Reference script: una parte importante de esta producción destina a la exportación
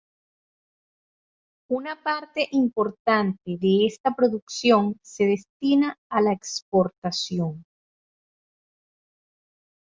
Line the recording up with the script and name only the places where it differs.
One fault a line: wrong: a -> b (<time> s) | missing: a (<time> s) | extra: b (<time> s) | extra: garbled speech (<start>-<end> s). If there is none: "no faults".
extra: se (5.0 s)